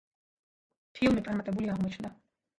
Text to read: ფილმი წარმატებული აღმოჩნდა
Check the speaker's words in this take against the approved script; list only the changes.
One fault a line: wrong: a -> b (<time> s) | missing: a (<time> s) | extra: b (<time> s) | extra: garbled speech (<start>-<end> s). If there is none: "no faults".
no faults